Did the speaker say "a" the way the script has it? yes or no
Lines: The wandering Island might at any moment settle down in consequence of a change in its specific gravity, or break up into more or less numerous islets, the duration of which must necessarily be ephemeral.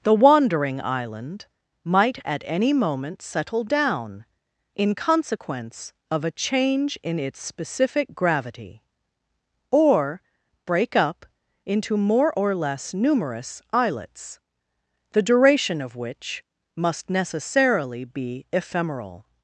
yes